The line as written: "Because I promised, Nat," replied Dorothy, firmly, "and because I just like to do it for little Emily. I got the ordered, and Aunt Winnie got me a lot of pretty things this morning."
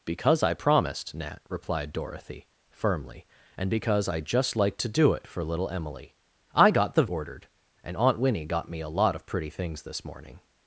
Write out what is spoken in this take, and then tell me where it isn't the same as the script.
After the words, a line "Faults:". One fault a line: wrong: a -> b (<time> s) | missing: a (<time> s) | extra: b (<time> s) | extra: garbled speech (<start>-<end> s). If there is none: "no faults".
"Because I promised, Nat," replied Dorothy, firmly, "and because I just like to do it for little Emily. I got the ordered, and Aunt Winnie got me a lot of pretty things this morning."
Faults:
no faults